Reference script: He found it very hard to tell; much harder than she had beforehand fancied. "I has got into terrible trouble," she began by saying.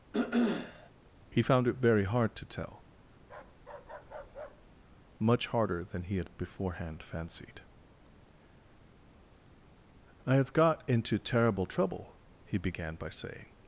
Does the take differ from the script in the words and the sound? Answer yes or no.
yes